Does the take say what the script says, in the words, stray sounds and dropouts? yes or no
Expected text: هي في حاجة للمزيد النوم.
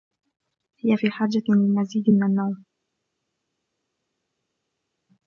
no